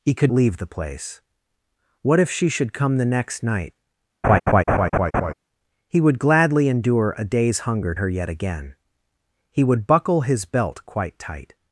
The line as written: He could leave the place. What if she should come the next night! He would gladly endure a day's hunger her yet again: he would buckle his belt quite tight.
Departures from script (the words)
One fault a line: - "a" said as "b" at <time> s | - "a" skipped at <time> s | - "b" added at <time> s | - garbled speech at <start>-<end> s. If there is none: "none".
none